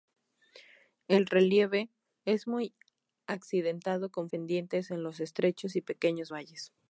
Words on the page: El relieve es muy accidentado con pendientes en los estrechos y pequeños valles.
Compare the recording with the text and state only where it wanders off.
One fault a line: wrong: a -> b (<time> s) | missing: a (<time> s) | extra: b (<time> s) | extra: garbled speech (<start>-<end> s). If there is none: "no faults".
no faults